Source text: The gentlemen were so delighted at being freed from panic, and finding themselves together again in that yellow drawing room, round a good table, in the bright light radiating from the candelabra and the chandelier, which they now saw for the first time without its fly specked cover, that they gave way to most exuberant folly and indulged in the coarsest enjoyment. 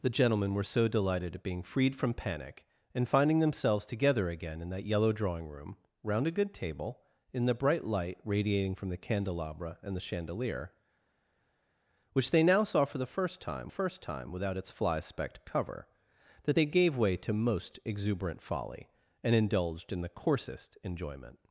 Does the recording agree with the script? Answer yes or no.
no